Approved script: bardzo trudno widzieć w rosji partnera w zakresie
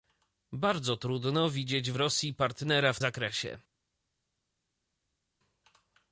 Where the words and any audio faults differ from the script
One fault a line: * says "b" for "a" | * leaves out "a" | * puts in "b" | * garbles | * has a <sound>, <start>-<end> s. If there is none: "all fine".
all fine